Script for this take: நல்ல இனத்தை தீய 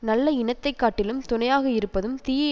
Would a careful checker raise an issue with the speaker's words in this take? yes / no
yes